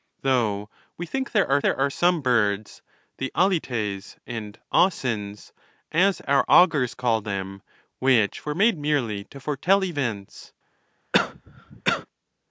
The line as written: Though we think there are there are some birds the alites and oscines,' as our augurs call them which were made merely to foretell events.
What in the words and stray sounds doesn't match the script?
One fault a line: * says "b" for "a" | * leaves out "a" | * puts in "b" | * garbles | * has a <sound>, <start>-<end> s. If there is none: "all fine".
* has a cough, 11.1-12.1 s